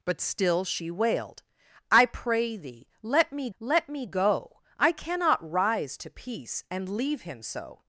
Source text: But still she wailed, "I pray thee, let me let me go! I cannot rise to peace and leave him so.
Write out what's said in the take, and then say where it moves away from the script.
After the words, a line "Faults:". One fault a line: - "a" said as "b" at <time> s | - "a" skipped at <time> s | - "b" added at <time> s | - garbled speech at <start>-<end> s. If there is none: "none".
But still she wailed, "I pray thee, let me let me go! I cannot rise to peace and leave him so.
Faults:
none